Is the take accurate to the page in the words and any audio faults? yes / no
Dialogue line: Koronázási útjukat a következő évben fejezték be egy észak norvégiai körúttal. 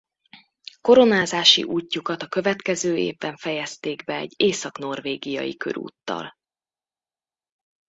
yes